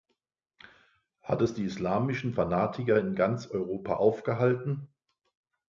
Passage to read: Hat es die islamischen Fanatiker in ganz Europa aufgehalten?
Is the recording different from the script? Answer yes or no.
no